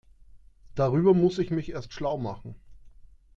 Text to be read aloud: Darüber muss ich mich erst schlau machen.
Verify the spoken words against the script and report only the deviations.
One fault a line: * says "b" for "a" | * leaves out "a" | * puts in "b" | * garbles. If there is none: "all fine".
all fine